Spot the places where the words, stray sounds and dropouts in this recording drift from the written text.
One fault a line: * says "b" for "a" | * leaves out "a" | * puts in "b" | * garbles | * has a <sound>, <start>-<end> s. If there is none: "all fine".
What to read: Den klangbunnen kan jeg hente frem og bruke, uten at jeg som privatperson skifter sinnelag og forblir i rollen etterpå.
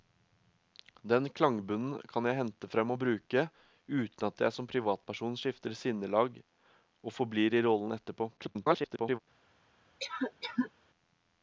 * garbles
* has a cough, 10.0-10.7 s